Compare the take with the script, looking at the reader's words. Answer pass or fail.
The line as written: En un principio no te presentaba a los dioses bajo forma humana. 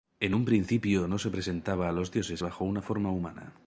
fail